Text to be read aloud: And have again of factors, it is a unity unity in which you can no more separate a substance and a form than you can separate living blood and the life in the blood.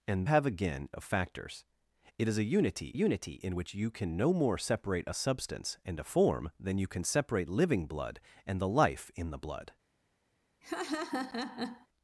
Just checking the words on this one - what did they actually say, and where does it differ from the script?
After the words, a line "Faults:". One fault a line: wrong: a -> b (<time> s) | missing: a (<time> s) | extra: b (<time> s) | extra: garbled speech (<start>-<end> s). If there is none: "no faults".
And have again of factors, it is a unity unity in which you can no more separate a substance and a form than you can separate living blood and the life in the blood.
Faults:
no faults